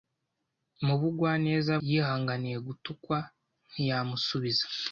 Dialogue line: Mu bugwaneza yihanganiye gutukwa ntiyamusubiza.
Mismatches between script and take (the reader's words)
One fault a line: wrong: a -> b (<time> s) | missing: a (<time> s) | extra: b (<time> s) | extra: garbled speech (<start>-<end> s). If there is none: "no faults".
no faults